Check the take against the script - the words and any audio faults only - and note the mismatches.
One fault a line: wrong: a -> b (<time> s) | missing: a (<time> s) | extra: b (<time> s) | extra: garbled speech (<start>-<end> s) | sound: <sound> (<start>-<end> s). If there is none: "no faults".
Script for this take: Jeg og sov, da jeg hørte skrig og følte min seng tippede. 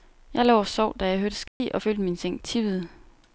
extra: lå (0.5 s)
sound: dropout (1.5-1.6 s)